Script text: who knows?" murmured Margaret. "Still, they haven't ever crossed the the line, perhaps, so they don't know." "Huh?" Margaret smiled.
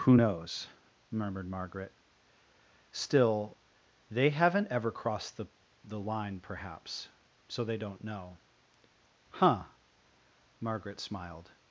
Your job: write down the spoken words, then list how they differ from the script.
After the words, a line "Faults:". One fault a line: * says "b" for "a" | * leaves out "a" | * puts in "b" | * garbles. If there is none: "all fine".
who knows?" murmured Margaret. "Still, they haven't ever crossed the the line, perhaps, so they don't know." "Huh?" Margaret smiled.
Faults:
all fine